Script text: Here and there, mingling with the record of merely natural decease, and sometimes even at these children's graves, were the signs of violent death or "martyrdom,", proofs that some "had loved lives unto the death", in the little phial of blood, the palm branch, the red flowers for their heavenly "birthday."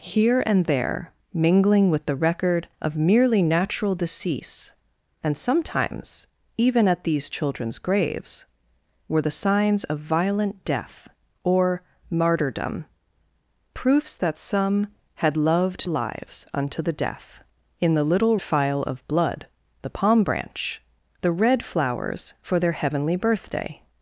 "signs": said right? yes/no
yes